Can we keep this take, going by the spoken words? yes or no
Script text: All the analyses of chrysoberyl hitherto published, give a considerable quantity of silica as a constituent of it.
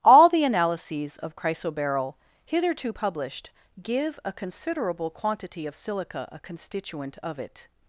no